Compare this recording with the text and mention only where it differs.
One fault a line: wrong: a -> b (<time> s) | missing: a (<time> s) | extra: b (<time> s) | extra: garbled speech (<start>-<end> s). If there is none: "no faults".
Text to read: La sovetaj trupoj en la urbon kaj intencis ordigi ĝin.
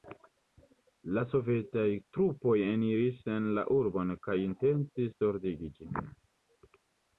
extra: eniris (2.7 s)